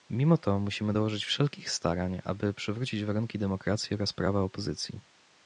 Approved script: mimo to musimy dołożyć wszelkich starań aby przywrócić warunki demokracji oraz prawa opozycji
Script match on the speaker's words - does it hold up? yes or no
yes